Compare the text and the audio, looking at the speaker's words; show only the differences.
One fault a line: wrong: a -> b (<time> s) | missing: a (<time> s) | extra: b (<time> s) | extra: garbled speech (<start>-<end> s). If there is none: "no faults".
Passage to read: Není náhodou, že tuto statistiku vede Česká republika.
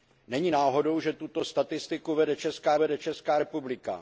extra: vede Česká (2.8 s)